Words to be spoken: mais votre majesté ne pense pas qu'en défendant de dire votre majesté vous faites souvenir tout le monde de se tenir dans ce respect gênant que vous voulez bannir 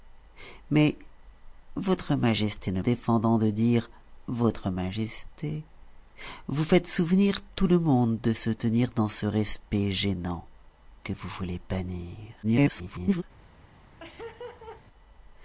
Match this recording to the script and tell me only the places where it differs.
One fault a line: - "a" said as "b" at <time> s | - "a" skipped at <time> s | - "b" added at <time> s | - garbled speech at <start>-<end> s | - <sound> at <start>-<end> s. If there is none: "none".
- "pense pas qu'en" skipped at 2.8 s
- garbled speech at 12.4-13.2 s
- laugh at 14.0-14.8 s